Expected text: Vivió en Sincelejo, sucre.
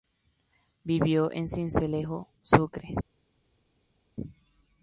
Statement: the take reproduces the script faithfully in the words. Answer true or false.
true